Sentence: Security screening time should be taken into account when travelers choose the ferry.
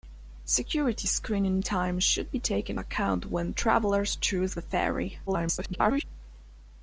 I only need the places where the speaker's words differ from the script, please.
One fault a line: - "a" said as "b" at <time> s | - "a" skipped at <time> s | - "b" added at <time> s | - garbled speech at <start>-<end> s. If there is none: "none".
- "into" skipped at 2.8 s
- garbled speech at 5.3-6.0 s